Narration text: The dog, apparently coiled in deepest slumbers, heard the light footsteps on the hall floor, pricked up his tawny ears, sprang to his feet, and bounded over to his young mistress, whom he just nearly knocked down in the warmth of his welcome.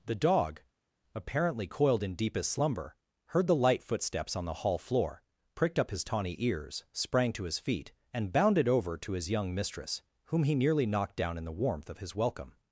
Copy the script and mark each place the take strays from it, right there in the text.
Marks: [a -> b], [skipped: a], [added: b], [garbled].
The dog, apparently coiled in deepest [slumbers, -> slumber] heard the light footsteps on the hall floor, pricked up his tawny ears, sprang to his feet, and bounded over to his young mistress, whom he [skipped: just] nearly knocked down in the warmth of his welcome.